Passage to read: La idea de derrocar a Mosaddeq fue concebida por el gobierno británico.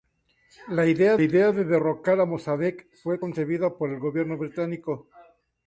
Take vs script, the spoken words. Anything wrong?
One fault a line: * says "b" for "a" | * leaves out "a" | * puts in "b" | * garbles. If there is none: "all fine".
* puts in "idea"